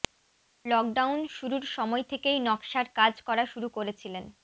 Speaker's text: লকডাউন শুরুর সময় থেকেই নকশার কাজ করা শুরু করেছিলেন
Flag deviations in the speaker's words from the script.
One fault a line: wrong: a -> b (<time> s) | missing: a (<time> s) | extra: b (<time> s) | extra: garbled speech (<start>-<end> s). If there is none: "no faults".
no faults